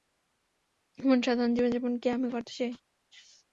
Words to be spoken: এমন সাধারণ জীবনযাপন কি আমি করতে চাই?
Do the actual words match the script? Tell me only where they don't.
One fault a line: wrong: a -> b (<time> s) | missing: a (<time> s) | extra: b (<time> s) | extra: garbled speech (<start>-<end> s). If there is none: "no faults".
no faults